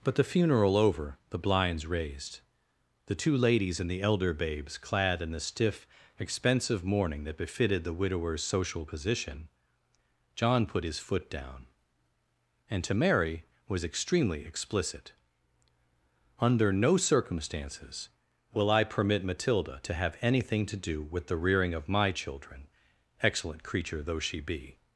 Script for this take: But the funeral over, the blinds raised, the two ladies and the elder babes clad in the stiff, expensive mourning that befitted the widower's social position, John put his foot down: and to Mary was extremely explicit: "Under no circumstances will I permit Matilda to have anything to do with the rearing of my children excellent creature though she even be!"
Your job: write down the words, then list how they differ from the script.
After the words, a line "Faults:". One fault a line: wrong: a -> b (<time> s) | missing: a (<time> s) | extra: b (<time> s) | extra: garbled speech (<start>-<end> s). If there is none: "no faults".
But the funeral over, the blinds raised, the two ladies and the elder babes clad in the stiff, expensive mourning that befitted the widower's social position, John put his foot down: and to Mary was extremely explicit: "Under no circumstances will I permit Matilda to have anything to do with the rearing of my children excellent creature though she be!"
Faults:
missing: even (24.4 s)